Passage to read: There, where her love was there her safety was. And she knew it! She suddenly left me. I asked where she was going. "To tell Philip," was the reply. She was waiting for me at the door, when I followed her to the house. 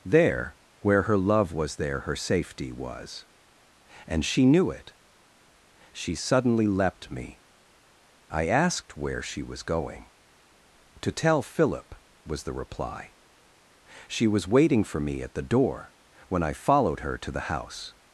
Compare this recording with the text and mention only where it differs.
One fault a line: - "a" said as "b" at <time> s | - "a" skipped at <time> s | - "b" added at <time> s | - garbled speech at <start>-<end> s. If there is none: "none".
- "left" said as "leapt" at 6.7 s